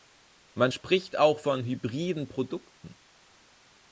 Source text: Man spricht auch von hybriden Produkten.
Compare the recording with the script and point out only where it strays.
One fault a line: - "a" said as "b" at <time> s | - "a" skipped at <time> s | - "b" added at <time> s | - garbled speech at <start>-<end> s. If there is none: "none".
none